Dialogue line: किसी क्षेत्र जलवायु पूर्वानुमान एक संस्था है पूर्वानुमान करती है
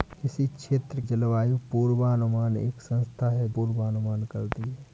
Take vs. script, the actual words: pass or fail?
pass